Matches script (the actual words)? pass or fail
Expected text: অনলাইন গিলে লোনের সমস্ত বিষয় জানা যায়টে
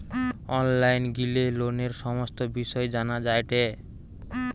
pass